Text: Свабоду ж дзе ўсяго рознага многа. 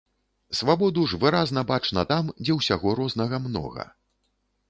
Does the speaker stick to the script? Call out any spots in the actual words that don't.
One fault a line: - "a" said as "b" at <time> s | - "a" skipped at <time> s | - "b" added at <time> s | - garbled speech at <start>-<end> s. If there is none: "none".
- "выразна бачна там" added at 1.2 s